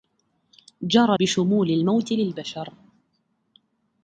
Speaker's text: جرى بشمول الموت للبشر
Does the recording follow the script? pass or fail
pass